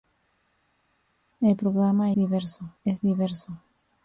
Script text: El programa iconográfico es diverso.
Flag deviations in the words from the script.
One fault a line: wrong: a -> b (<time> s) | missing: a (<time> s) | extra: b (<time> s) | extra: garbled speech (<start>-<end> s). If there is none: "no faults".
wrong: iconográfico -> diverso (2.1 s)